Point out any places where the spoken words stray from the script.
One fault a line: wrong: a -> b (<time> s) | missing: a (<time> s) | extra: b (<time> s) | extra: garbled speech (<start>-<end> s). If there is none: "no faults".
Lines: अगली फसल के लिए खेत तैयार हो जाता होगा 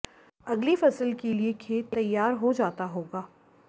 no faults